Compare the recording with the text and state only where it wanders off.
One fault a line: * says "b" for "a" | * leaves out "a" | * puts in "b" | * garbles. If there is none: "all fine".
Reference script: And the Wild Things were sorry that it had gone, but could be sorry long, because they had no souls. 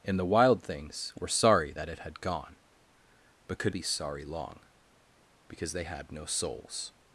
all fine